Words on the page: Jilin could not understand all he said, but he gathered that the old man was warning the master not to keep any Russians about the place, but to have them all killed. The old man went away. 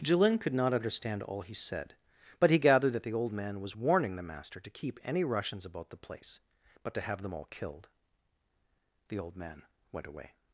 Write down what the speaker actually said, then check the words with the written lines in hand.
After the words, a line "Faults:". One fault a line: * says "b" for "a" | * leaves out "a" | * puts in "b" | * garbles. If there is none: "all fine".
Jilin could not understand all he said, but he gathered that the old man was warning the master to keep any Russians about the place, but to have them all killed. The old man went away.
Faults:
* leaves out "not"